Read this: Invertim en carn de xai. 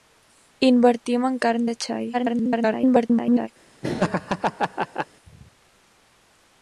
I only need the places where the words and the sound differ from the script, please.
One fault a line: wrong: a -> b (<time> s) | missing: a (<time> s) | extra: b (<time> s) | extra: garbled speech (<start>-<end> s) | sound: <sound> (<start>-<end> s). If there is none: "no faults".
extra: garbled speech (2.1-3.5 s)
sound: laugh (3.8-5.1 s)